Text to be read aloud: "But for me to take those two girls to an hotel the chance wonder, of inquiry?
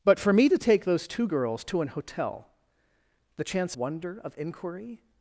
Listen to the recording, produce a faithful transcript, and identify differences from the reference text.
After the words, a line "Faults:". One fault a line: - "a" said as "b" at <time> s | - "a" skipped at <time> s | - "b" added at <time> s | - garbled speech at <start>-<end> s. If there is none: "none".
"But for me to take those two girls to an hotel the chance wonder, of inquiry?
Faults:
none